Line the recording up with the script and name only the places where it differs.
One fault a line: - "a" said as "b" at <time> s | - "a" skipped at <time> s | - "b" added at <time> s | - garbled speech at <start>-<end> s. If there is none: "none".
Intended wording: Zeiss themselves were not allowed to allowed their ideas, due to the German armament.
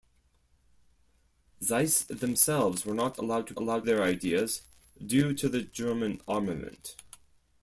none